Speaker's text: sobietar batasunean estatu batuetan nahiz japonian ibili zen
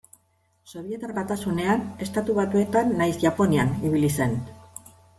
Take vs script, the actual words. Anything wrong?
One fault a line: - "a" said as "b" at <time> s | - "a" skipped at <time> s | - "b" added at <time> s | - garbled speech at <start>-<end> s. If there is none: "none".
none